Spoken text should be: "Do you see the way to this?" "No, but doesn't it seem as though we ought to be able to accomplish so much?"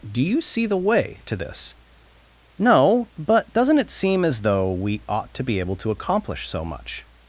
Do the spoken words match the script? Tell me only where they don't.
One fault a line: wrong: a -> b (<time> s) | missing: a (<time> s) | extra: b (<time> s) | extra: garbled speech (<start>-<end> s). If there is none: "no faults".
no faults